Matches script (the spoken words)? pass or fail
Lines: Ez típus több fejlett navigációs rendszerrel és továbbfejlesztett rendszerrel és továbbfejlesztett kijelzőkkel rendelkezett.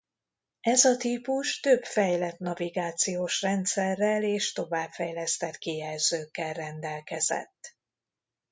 fail